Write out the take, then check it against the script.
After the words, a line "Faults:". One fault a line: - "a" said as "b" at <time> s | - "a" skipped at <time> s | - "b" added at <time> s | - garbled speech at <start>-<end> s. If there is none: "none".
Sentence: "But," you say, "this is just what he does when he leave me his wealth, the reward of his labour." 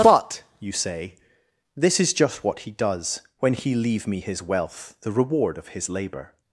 "But," you say, "this is just what he does when he leave me his wealth, the reward of his labour."
Faults:
none